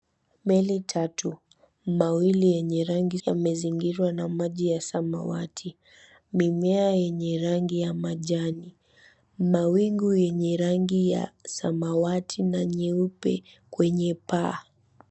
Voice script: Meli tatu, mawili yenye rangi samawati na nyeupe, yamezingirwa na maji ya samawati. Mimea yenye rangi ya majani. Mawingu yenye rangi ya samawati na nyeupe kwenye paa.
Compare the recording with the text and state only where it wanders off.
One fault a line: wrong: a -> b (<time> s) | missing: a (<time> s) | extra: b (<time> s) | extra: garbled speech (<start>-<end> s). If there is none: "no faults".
missing: samawati na nyeupe (3.2 s)